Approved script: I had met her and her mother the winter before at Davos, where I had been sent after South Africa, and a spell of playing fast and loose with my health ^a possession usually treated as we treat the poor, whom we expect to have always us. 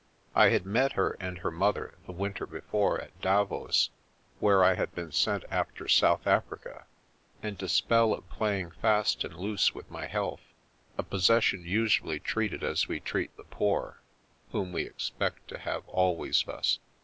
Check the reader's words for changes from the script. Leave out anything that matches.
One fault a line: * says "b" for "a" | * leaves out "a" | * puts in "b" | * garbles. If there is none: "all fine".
all fine